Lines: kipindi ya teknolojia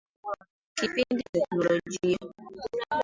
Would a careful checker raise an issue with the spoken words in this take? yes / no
no